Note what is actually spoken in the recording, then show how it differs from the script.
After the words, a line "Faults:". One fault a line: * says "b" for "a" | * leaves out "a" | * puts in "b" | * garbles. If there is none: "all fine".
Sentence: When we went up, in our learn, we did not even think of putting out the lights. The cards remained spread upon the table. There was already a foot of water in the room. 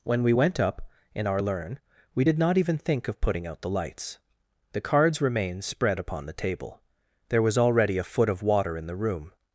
When we went up, in our learn, we did not even think of putting out the lights. The cards remained spread upon the table. There was already a foot of water in the room.
Faults:
all fine